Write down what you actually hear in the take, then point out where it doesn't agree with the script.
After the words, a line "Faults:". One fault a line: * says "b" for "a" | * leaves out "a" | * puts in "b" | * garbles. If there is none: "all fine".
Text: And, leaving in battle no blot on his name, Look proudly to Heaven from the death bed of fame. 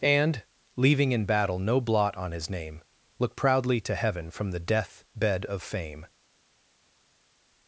And, leaving in battle no blot on his name, Look proudly to Heaven from the death bed of fame.
Faults:
all fine